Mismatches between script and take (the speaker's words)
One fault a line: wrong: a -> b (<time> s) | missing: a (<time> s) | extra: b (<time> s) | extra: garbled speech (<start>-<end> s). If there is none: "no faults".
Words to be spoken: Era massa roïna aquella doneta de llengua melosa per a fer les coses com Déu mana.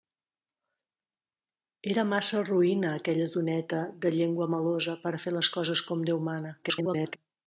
extra: garbled speech (6.6-7.2 s)